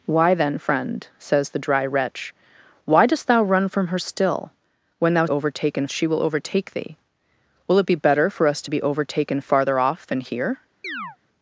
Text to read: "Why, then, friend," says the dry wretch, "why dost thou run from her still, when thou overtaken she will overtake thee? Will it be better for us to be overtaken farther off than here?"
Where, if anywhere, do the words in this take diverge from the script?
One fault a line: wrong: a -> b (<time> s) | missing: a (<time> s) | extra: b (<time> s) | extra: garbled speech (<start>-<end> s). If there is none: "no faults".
no faults